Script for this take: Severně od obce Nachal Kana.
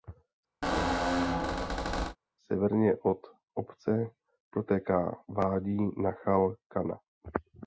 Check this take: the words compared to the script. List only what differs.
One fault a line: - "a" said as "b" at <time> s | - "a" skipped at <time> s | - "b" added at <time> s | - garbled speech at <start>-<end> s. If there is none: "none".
- "protéká vádí" added at 4.5 s